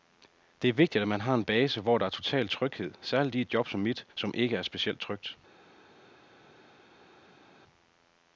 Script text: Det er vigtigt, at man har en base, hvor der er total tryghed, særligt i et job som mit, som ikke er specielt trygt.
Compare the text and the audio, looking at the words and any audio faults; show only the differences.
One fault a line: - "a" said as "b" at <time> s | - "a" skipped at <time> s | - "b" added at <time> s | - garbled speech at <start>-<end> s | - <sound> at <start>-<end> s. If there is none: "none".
none